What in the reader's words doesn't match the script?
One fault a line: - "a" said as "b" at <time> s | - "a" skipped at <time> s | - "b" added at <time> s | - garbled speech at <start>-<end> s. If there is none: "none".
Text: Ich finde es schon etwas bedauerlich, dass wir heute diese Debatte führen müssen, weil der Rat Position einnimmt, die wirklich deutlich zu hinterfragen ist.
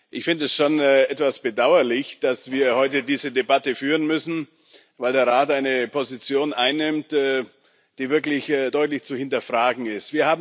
- "eine" added at 5.5 s